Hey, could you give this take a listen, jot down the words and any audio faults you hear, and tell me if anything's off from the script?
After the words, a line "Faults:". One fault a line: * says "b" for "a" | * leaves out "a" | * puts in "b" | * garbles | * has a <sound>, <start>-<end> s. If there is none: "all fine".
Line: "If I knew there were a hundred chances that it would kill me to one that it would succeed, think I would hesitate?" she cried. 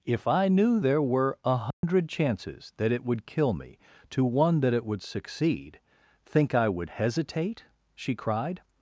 "If I knew there were a hundred chances that it would kill me to one that it would succeed, think I would hesitate?" she cried.
Faults:
* has a dropout, 1.7-1.8 s